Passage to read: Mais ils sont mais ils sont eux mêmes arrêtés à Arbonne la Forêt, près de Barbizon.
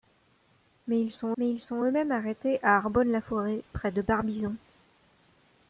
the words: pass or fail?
pass